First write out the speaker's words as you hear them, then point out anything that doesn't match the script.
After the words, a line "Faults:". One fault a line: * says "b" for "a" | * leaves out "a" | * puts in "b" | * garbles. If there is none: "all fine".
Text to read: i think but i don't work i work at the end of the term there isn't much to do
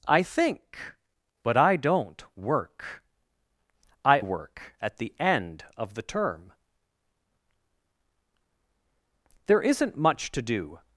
i think but i don't work i work at the end of the term there isn't much to do
Faults:
all fine